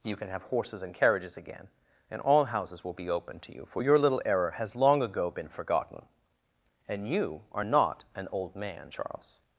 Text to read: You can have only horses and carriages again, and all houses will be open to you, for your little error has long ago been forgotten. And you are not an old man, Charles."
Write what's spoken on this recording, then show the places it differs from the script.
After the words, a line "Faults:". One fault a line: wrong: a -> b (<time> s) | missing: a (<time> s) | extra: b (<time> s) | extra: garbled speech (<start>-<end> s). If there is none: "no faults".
You can have horses and carriages again, and all houses will be open to you, for your little error has long ago been forgotten. And you are not an old man, Charles."
Faults:
missing: only (0.4 s)